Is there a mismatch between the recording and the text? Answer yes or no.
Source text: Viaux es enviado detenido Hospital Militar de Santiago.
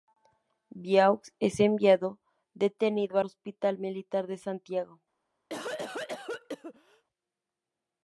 no